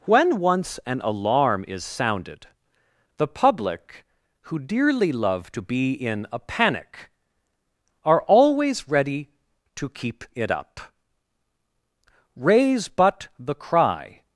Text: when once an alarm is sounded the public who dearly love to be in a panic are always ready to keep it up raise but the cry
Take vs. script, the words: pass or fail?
pass